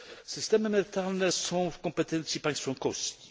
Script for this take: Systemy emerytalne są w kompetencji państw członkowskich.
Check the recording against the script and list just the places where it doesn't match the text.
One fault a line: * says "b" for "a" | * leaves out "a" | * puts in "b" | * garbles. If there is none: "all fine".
all fine